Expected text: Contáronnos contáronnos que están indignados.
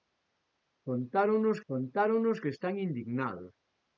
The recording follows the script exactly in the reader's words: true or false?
true